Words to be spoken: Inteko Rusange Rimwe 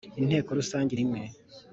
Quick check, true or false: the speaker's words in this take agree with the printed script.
true